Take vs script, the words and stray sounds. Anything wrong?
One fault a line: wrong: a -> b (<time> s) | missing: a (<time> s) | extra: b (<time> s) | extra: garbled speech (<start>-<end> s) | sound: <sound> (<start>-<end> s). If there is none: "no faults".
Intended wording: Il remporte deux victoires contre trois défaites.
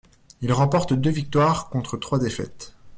no faults